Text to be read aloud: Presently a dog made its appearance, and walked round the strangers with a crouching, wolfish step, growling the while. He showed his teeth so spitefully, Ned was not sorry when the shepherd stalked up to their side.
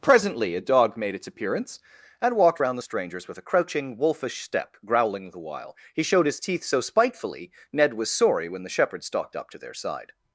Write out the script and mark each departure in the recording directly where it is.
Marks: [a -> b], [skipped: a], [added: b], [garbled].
Presently a dog made its appearance, and walked round the strangers with a crouching, wolfish step, growling the while. He showed his teeth so spitefully, Ned was [skipped: not] sorry when the shepherd stalked up to their side.